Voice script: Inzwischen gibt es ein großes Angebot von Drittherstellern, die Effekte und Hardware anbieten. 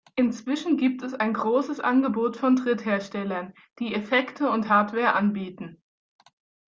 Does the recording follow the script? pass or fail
pass